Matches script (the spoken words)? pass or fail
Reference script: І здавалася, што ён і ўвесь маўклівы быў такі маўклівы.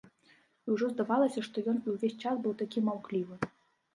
fail